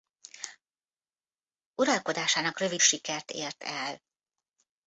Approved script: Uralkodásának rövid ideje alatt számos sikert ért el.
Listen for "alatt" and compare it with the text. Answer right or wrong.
wrong